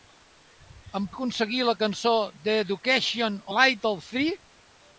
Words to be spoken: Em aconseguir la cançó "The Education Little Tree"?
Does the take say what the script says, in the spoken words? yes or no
yes